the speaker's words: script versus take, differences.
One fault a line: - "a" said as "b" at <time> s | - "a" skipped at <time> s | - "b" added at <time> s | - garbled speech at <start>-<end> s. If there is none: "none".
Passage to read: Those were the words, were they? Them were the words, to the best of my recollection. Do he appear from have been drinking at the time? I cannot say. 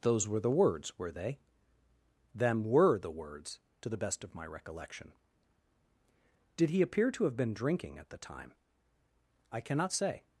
- "Do" said as "Did" at 6.6 s
- "from" said as "to" at 7.1 s